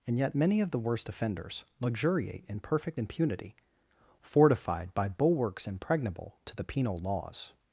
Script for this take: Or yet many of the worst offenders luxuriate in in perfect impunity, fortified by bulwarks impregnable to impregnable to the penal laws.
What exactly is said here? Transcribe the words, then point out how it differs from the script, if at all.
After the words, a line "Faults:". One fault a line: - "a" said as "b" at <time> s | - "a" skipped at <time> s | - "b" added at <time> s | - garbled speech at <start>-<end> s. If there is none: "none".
And yet many of the worst offenders luxuriate in perfect impunity, fortified by bulwarks impregnable to the penal laws.
Faults:
- "Or" said as "And" at 0.1 s
- "in" skipped at 2.6 s
- "impregnable to" skipped at 6.5 s